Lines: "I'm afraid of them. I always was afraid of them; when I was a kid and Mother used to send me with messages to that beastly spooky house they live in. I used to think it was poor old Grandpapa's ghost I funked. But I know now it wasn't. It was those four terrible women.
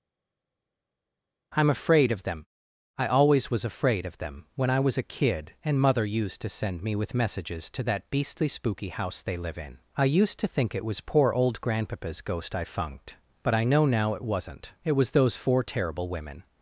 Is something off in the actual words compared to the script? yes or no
no